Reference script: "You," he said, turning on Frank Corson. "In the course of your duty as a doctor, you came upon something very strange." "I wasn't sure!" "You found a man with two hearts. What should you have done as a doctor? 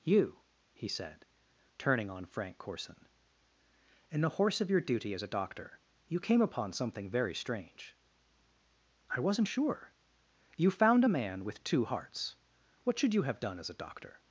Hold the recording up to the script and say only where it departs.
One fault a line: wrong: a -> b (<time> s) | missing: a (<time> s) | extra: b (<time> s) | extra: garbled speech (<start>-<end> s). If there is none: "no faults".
wrong: course -> horse (4.3 s)